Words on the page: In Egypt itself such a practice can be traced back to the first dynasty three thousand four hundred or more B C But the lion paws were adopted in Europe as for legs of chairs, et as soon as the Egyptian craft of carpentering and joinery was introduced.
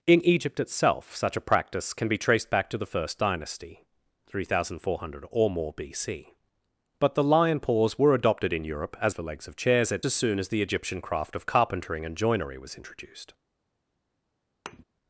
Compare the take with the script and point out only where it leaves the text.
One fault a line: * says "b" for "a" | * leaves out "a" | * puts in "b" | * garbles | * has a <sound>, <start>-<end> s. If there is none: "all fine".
* has a thud, 14.7-14.8 s